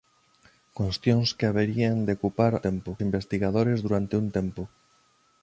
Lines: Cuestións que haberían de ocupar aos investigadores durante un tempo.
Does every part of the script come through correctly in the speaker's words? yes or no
no